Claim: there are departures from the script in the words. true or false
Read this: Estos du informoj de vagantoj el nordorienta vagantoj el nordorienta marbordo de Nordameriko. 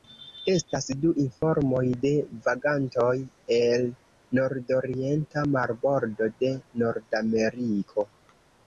true